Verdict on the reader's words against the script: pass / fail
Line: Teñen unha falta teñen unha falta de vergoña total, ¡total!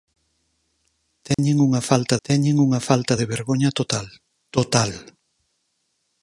pass